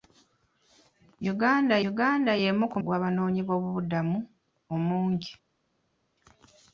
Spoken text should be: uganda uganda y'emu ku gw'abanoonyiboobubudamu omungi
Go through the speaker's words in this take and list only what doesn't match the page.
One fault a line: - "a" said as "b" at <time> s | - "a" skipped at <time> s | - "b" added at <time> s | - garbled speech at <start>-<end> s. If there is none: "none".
none